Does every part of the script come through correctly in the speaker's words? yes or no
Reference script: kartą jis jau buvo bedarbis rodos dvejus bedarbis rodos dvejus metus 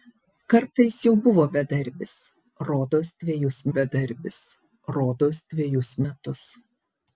yes